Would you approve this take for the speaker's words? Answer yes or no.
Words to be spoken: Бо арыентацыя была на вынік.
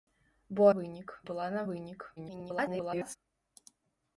no